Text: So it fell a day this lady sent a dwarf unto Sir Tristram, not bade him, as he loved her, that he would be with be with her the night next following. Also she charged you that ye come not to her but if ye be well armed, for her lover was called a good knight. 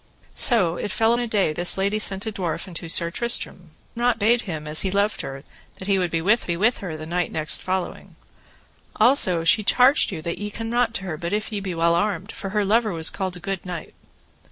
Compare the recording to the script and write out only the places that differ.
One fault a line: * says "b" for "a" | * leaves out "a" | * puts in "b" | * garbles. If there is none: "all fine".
all fine